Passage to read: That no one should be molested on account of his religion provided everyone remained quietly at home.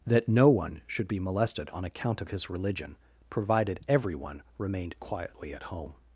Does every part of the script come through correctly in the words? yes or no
yes